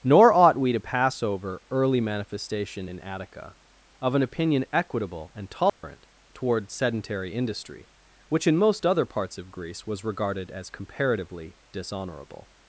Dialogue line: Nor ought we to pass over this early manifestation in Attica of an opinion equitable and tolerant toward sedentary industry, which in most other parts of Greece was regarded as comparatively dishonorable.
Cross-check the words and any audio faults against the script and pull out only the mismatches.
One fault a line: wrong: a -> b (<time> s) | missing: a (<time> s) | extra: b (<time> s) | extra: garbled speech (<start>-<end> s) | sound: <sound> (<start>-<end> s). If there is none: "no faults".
missing: this (1.6 s)
sound: dropout (5.7-5.8 s)